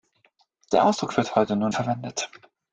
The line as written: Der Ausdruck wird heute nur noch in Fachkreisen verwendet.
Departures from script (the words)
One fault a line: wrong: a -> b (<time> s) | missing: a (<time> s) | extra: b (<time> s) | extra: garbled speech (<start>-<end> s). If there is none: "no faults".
missing: noch in Fachkreisen (1.7 s)